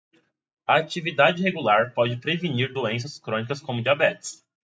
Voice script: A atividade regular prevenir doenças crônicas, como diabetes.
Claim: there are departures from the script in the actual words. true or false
true